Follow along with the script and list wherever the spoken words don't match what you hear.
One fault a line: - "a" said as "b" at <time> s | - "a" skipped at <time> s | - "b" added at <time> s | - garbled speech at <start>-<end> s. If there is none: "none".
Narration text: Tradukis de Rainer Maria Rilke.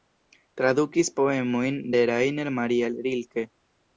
- "poemojn" added at 1.2 s